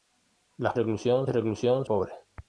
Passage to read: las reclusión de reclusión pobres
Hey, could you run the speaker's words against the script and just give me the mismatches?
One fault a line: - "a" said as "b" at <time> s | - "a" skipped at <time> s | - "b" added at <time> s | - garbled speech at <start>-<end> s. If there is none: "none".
none